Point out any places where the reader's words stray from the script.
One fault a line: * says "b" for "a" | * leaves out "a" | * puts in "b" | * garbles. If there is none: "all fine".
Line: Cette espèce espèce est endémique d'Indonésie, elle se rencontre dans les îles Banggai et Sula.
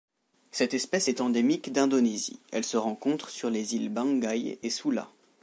* leaves out "espèce"
* says "sur" for "dans"